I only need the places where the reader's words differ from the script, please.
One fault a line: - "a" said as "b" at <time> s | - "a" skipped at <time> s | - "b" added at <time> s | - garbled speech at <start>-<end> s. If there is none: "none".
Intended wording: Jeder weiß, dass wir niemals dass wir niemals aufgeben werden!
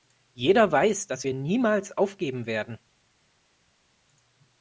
- "dass wir niemals" skipped at 2.0 s